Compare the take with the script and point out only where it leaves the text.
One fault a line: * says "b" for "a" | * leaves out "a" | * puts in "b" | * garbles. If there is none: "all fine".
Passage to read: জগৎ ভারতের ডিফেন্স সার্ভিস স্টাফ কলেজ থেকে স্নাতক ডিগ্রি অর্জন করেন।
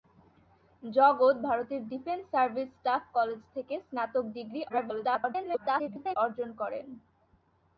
* garbles